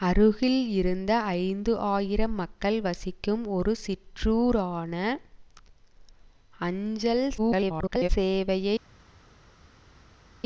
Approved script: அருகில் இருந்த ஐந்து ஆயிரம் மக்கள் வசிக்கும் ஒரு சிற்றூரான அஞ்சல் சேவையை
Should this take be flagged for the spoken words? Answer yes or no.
yes